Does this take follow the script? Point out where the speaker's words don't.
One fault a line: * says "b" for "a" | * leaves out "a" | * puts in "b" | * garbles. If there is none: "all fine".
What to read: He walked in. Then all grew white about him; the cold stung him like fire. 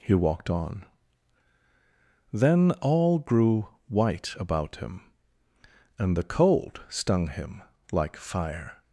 * says "on" for "in"
* puts in "and"